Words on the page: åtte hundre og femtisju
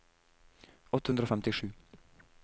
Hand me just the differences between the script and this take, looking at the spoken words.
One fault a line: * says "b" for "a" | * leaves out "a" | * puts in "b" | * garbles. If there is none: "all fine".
all fine